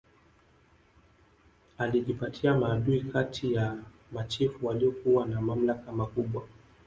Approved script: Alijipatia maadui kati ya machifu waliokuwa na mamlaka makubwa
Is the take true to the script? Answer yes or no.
yes